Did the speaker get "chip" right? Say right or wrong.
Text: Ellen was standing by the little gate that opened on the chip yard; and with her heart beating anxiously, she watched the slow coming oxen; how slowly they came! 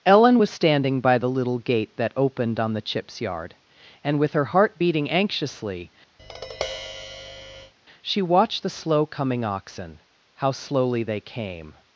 wrong